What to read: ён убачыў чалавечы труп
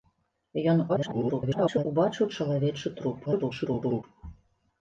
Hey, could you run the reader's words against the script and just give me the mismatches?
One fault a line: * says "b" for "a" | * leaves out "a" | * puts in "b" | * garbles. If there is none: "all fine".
* garbles
* garbles